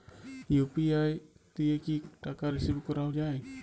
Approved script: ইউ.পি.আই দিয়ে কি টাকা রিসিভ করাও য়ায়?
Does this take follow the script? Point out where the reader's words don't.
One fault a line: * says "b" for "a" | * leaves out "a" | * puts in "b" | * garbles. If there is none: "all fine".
all fine